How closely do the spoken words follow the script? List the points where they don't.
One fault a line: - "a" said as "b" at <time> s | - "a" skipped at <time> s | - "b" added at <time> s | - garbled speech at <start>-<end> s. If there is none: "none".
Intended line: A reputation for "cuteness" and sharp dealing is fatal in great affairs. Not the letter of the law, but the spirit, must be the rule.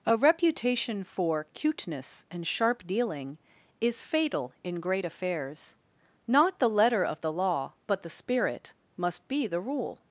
none